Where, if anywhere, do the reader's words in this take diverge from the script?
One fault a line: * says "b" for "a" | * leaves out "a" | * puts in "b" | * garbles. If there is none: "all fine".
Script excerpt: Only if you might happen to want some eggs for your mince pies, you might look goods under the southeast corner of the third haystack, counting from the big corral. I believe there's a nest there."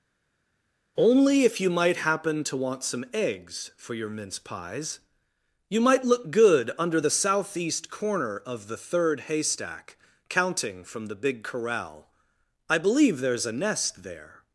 * says "good" for "goods"